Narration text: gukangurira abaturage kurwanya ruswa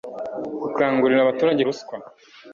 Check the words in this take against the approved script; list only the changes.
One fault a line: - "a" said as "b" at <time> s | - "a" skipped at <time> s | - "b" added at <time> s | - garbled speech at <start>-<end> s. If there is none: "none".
- "kurwanya" skipped at 1.6 s